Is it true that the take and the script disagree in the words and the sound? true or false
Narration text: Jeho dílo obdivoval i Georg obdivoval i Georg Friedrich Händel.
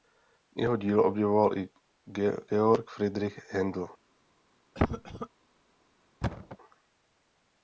true